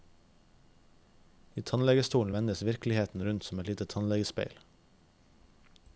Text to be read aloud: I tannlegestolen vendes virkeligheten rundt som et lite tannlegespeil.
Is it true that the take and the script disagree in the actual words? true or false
false